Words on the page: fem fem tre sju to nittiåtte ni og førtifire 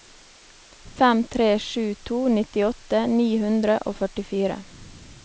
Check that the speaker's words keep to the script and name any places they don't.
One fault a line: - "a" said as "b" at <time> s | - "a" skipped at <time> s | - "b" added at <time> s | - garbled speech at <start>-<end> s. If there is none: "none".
- "fem" skipped at 1.2 s
- "hundre" added at 3.5 s